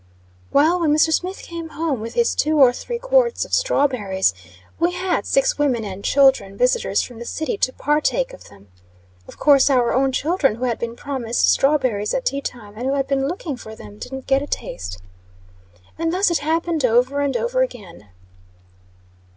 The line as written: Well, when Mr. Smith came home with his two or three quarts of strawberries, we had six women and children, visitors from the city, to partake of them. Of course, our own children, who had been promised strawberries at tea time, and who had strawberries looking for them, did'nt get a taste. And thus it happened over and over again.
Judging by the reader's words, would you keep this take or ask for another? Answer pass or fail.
fail